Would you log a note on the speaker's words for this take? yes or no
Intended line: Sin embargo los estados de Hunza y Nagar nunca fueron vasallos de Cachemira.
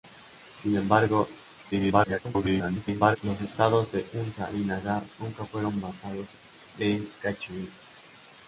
yes